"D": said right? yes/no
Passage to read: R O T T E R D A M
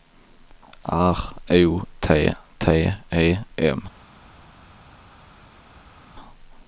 no